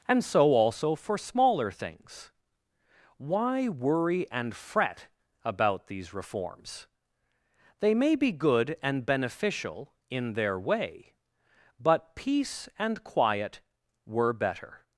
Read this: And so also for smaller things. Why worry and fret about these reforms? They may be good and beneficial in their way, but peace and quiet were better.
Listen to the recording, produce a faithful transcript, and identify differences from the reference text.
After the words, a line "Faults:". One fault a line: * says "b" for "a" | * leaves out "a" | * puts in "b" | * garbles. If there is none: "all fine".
And so also for smaller things. Why worry and fret about these reforms? They may be good and beneficial in their way, but peace and quiet were better.
Faults:
all fine